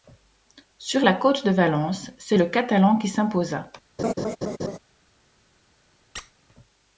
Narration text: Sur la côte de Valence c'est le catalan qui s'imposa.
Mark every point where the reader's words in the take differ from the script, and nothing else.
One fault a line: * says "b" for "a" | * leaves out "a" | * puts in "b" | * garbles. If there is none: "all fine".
all fine